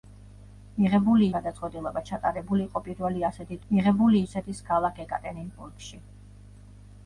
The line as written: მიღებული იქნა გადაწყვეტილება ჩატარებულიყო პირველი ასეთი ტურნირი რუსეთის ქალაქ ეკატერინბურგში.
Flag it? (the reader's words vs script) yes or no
yes